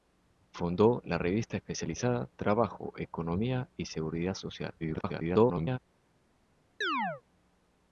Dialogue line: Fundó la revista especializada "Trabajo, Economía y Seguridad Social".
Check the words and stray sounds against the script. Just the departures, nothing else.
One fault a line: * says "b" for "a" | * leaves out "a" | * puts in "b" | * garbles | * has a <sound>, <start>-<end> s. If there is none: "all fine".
* garbles
* has a chirp, 6.8-7.2 s